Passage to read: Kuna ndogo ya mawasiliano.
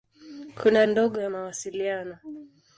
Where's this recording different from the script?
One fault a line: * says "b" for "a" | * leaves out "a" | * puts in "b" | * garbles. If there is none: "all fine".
all fine